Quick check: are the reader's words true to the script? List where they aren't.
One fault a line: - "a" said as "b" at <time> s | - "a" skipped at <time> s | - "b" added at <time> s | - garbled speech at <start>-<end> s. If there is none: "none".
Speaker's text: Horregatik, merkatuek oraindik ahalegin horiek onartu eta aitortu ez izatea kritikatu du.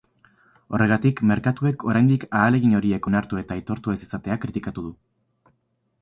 none